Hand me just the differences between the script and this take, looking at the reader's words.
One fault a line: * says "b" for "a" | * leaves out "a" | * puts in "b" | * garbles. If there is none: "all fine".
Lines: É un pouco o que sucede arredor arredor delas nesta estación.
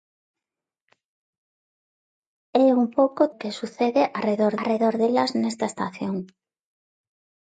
all fine